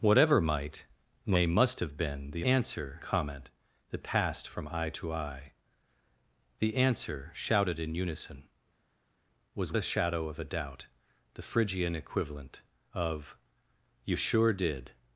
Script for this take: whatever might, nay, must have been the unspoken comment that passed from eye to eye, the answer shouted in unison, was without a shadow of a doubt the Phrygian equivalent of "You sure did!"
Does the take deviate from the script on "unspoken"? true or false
true